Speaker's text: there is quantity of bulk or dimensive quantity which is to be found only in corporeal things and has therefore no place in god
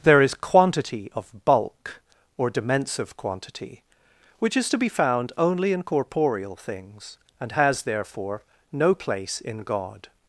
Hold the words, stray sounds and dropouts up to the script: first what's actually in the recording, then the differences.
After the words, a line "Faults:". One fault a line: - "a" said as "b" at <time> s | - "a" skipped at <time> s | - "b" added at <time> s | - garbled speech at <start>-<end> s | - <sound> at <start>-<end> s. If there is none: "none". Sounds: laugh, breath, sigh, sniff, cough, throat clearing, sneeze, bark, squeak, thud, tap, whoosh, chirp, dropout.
there is quantity of bulk or dimensive quantity which is to be found only in corporeal things and has therefore no place in god
Faults:
none